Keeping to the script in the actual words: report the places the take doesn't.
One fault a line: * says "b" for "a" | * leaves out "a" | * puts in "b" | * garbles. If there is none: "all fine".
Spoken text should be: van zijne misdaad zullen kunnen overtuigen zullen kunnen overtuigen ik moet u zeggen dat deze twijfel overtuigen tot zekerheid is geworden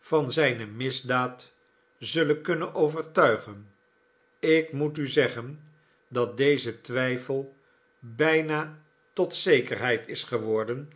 * leaves out "zullen kunnen overtuigen"
* says "bijna" for "overtuigen"